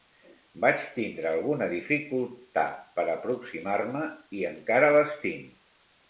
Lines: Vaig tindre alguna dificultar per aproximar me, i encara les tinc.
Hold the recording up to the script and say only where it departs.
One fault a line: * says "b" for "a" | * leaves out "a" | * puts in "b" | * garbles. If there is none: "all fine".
all fine